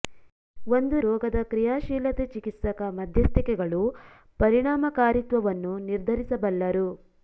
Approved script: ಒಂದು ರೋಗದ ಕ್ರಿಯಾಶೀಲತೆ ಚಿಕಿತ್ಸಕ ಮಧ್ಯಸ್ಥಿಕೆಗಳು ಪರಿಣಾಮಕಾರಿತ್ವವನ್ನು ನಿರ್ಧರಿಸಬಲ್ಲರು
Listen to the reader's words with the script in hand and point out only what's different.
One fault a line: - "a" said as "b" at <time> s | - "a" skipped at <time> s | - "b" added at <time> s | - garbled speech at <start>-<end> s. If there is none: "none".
none